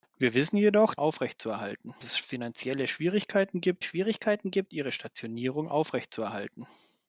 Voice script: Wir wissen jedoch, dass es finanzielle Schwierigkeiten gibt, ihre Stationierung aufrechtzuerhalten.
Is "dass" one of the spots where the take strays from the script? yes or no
yes